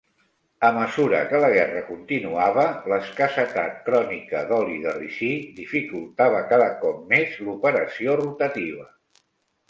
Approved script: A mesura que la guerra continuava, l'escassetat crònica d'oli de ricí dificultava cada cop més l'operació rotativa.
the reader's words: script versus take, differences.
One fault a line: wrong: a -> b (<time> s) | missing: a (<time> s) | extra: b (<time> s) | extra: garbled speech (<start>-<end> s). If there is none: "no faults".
no faults